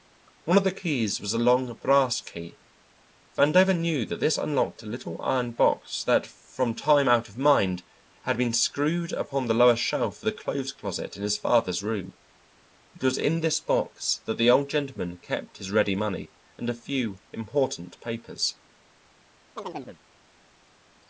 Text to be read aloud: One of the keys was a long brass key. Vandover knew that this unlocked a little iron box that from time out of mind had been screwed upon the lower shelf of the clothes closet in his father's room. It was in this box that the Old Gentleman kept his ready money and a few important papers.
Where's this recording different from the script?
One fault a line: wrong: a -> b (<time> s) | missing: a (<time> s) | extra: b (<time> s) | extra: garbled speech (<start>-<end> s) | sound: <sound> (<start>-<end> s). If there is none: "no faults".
sound: chirp (19.6-20.0 s)